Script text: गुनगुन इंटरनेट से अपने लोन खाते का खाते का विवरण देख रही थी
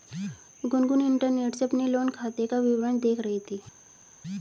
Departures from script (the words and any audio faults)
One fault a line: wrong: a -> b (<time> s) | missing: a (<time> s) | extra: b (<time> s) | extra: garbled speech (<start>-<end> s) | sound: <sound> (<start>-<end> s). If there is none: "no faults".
missing: खाते का (2.6 s)